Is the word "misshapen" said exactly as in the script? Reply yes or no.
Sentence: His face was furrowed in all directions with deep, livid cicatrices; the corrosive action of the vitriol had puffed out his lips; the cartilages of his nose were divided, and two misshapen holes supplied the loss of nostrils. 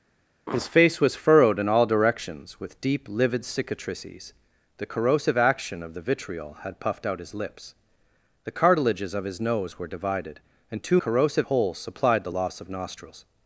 no